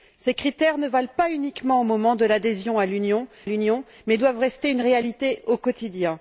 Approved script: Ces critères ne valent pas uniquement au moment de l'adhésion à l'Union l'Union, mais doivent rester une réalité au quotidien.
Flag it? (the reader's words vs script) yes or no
no